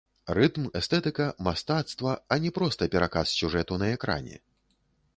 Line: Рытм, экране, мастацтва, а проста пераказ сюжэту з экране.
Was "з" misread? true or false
true